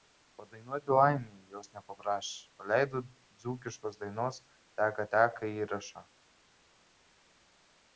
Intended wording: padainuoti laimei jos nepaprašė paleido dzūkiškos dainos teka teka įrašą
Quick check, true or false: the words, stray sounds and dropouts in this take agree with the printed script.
true